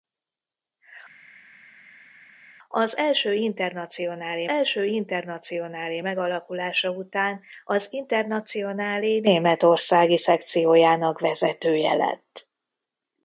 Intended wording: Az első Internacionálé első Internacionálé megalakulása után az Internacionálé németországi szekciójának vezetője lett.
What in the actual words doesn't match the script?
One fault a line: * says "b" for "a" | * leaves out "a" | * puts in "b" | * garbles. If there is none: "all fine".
all fine